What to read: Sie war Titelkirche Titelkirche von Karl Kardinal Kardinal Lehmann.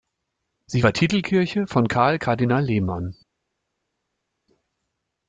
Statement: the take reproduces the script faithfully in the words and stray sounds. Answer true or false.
false